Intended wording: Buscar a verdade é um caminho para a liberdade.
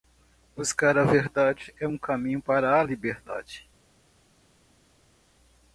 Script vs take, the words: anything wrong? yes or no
no